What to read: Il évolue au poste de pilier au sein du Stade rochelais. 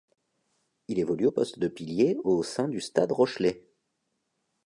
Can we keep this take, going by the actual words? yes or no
yes